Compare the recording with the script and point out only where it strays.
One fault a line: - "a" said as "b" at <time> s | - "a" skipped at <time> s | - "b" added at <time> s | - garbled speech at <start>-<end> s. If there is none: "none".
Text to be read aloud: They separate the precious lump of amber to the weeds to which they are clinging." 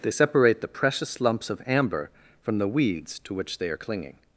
- "lump" said as "lumps" at 1.2 s
- "to" said as "from" at 2.4 s